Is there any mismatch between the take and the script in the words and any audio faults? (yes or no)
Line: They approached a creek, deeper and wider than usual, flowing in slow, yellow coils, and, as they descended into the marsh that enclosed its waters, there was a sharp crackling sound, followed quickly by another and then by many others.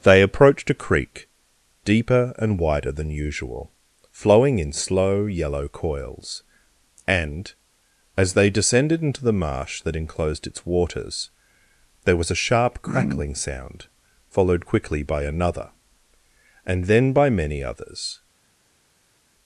no